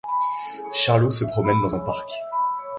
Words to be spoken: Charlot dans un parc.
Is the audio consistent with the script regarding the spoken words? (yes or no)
no